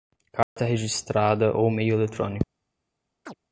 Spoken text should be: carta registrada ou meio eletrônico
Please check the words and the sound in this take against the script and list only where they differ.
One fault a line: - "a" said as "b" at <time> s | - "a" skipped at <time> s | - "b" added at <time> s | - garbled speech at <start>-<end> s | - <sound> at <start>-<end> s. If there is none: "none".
- dropout at 0.4-0.6 s
- chirp at 3.3-3.3 s